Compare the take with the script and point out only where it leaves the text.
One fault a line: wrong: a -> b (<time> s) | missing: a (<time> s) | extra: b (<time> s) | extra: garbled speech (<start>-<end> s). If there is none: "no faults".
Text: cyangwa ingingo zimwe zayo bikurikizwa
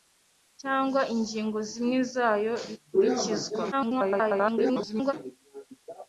extra: garbled speech (3.7-5.1 s)